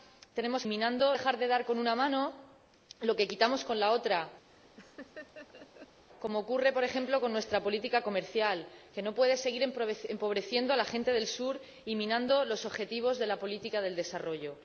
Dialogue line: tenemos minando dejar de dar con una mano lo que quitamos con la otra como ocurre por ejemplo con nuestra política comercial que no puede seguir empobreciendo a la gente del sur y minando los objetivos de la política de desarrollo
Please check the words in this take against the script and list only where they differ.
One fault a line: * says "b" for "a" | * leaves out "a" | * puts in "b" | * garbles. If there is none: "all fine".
all fine